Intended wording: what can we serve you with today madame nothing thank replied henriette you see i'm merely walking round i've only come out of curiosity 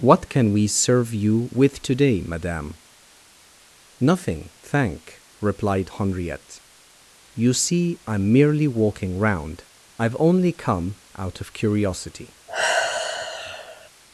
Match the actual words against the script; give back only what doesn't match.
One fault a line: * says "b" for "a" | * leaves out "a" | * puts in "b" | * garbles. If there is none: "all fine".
all fine